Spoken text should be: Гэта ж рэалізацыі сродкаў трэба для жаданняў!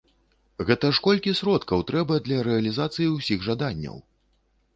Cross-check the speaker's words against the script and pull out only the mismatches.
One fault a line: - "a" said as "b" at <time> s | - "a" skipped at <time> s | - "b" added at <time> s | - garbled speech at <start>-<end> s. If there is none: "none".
- "рэалізацыі" said as "колькі" at 1.1 s
- "рэалізацыі ўсіх" added at 2.5 s